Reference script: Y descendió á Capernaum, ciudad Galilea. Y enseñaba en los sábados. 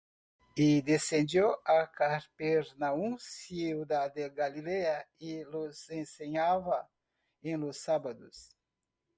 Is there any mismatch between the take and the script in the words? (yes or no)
yes